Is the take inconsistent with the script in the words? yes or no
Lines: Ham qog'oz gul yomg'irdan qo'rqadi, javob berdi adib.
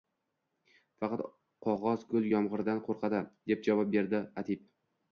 yes